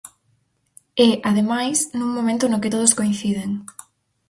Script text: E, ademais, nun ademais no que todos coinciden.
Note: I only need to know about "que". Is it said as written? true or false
true